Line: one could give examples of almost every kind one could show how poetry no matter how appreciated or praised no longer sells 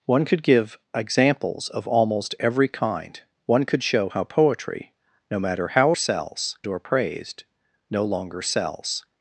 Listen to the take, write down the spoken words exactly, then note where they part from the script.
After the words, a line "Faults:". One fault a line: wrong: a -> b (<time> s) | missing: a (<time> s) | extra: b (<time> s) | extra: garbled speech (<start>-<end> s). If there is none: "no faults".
one could give examples of almost every kind one could show how poetry no matter how sells or praised no longer sells
Faults:
wrong: appreciated -> sells (5.9 s)